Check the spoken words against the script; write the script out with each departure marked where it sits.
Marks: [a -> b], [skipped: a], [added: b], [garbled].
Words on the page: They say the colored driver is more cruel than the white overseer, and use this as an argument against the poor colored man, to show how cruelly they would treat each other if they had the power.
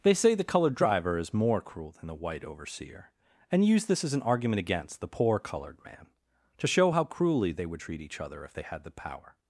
They say the colored driver is more cruel than the white overseer, and use this as an argument against the poor colored man, to show how cruelly they would treat each other if they had the power.